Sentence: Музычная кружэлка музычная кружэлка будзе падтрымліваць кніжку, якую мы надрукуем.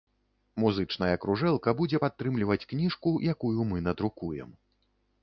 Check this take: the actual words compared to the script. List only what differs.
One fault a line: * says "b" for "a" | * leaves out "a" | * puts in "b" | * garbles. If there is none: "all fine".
* leaves out "музычная кружэлка"